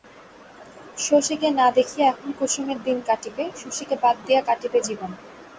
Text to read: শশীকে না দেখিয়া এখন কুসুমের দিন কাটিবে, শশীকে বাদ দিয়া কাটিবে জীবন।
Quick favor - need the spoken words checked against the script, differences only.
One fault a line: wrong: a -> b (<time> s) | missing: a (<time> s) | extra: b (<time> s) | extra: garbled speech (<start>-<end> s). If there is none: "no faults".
no faults